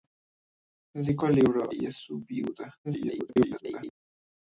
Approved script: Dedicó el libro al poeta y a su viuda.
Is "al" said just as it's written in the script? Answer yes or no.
no